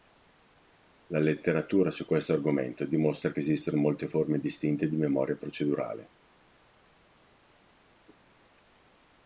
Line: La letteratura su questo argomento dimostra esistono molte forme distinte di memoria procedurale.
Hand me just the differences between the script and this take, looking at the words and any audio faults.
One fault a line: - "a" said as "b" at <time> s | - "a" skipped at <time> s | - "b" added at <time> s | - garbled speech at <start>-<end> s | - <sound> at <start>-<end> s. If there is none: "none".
- "che" added at 3.3 s